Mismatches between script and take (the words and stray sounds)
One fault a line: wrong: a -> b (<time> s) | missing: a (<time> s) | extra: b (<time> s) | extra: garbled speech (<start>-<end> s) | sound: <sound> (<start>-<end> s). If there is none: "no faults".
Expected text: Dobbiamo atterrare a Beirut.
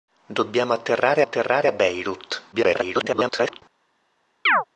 extra: atterrare (1.2 s)
extra: garbled speech (2.5-3.6 s)
sound: chirp (4.5-4.6 s)